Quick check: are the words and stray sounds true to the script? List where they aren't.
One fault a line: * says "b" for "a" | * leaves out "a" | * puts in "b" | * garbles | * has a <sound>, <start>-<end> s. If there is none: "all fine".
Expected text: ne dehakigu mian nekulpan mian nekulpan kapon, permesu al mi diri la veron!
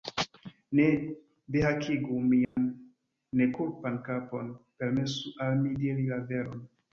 * has a dropout, 2.4-2.6 s
* leaves out "mian nekulpan"